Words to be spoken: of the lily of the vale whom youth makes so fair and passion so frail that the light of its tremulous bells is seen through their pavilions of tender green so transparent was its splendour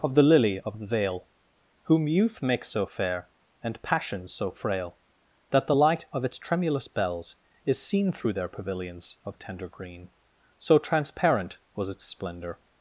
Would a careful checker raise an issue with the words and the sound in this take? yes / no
no